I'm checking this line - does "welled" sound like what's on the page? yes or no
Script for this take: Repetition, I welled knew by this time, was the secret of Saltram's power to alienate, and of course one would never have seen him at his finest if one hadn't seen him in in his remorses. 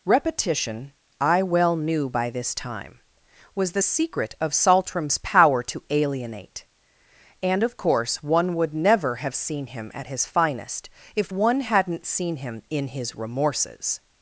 no